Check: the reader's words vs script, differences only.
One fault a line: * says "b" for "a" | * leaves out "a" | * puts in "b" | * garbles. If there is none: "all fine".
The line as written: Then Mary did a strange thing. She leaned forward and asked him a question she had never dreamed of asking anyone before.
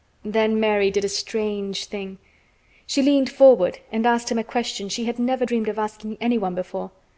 all fine